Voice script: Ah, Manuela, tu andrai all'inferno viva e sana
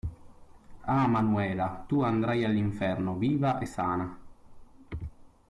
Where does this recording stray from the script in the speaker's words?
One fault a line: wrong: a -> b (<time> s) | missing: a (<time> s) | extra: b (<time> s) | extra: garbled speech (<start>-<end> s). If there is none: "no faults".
no faults